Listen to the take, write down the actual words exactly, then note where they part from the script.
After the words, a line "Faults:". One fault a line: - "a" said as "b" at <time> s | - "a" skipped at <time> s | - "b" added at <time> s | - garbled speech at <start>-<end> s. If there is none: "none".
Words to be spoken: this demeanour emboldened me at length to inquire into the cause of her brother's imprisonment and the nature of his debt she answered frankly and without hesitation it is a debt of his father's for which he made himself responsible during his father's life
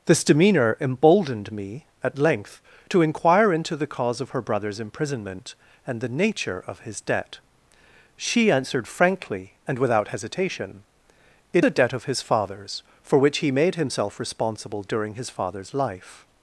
this demeanour emboldened me at length to inquire into the cause of her brother's imprisonment and the nature of his debt she answered frankly and without hesitation it a debt of his father's for which he made himself responsible during his father's life
Faults:
- "is" skipped at 11.6 s